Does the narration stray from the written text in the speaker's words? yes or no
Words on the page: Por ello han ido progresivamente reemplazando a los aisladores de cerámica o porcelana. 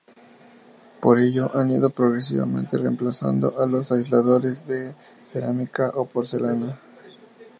no